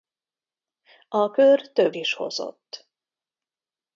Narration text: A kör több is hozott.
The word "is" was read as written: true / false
true